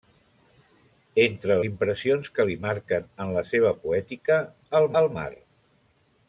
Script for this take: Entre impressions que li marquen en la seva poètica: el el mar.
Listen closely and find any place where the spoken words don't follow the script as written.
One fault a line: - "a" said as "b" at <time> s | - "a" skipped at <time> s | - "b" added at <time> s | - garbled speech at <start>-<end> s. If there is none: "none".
none